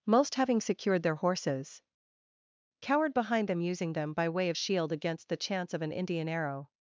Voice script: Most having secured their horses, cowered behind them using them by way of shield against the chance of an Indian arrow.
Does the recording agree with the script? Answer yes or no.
yes